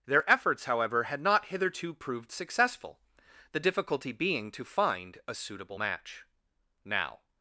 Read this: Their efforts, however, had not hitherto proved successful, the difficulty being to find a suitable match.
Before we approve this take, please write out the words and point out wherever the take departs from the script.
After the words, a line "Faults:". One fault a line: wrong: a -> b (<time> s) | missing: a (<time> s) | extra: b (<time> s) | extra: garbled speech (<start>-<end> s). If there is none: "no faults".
Their efforts, however, had not hitherto proved successful, the difficulty being to find a suitable match. Now
Faults:
extra: Now (6.8 s)